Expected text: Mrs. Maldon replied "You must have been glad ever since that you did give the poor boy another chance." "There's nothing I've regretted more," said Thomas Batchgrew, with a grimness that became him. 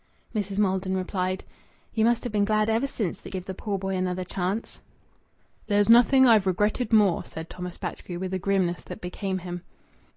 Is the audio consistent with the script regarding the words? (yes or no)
no